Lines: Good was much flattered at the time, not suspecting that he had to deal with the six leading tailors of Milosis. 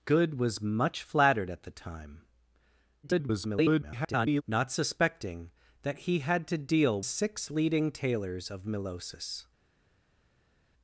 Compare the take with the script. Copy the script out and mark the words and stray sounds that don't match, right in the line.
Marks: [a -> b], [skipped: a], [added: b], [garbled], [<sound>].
Good was much flattered at the time, [garbled] not suspecting that he had to deal [skipped: with the] six leading tailors of Milosis.